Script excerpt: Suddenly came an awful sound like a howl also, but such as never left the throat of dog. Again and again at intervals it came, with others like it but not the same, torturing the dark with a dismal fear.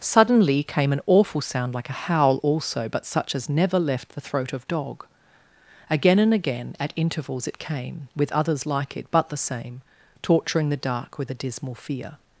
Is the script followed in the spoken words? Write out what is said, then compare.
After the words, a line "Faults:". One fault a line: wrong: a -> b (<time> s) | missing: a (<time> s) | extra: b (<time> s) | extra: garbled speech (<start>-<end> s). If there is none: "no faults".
Suddenly came an awful sound like a howl also, but such as never left the throat of dog. Again and again at intervals it came, with others like it but the same, torturing the dark with a dismal fear.
Faults:
missing: not (9.3 s)